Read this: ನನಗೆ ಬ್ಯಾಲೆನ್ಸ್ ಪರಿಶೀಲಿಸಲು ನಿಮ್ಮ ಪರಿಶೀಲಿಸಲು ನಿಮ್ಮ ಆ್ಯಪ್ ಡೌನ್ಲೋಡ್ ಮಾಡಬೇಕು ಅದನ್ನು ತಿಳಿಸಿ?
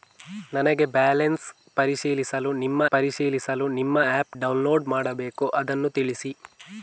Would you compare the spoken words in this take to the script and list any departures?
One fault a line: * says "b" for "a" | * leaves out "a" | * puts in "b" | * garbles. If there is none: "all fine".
all fine